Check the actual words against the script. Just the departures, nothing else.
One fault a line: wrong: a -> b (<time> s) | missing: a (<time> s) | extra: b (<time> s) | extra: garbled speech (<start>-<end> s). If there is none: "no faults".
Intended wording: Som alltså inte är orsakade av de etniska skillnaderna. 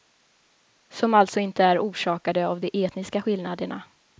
no faults